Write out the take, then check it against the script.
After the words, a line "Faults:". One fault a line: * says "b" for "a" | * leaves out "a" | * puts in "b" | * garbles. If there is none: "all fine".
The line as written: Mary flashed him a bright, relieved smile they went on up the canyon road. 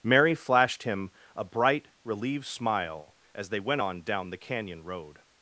Mary flashed him a bright, relieved smile as they went on down the canyon road.
Faults:
* puts in "as"
* says "down" for "up"